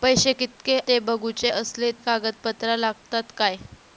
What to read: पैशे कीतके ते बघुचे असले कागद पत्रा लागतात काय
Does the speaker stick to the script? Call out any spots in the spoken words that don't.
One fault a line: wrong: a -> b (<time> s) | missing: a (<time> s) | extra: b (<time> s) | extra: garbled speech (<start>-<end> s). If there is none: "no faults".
no faults